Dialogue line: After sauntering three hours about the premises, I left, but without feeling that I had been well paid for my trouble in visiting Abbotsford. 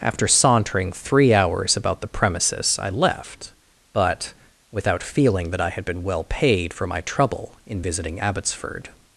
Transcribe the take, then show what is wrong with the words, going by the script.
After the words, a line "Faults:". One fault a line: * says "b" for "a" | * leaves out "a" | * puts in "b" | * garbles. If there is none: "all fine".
After sauntering three hours about the premises, I left, but without feeling that I had been well paid for my trouble in visiting Abbotsford.
Faults:
all fine